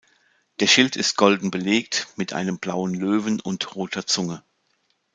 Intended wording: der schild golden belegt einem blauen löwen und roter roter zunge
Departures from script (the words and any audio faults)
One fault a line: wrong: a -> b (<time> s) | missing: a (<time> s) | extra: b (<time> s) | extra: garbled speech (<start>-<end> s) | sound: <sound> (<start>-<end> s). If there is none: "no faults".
extra: ist (0.9 s)
extra: mit (2.1 s)
missing: roter (4.1 s)